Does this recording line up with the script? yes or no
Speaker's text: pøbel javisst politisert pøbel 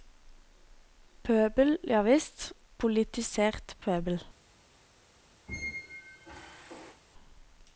yes